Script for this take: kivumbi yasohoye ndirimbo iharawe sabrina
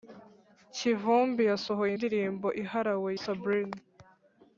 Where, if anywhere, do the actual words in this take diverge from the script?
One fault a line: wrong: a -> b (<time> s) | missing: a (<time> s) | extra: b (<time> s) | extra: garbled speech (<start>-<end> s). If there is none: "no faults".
no faults